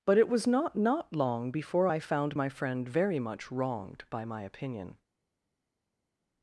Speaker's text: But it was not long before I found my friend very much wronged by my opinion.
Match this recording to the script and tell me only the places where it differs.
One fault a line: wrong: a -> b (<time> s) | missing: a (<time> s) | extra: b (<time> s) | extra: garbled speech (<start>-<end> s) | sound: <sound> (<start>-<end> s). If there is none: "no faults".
extra: not (0.8 s)